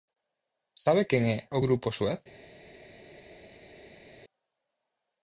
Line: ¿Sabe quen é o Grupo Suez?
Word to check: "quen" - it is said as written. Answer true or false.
true